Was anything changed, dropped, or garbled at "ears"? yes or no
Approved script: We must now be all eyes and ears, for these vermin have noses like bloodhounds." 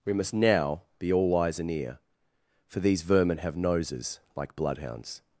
yes